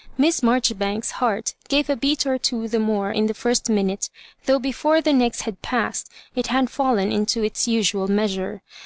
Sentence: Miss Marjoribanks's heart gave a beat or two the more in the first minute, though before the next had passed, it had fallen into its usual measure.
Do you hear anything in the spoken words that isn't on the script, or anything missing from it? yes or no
no